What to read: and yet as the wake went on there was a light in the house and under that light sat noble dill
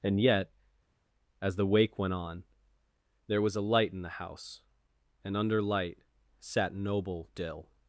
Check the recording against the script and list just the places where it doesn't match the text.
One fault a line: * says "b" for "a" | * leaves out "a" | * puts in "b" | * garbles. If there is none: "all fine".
* leaves out "that"